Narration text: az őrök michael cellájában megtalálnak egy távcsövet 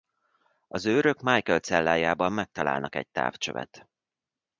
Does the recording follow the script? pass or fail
pass